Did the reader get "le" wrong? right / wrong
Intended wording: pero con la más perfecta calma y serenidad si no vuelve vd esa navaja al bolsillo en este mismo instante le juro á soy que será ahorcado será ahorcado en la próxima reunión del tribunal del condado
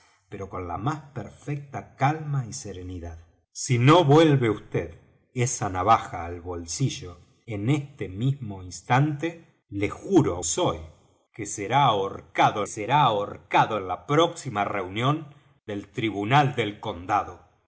right